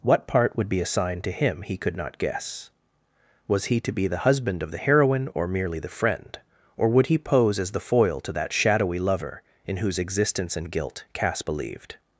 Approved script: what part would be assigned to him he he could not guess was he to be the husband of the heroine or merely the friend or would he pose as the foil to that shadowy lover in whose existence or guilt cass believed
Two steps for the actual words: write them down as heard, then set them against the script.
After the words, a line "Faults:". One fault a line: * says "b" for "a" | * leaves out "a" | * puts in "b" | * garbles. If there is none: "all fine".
what part would be assigned to him he could not guess was he to be the husband of the heroine or merely the friend or would he pose as the foil to that shadowy lover in whose existence and guilt cass believed
Faults:
* leaves out "he"
* says "and" for "or"